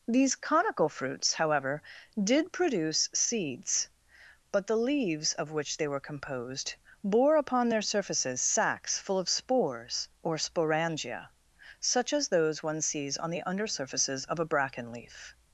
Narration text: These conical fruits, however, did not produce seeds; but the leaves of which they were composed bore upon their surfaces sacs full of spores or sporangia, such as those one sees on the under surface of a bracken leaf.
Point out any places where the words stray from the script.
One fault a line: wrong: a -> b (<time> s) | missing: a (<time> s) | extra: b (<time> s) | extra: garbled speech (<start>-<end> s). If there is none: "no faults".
missing: not (2.5 s)
wrong: surface -> surfaces (13.7 s)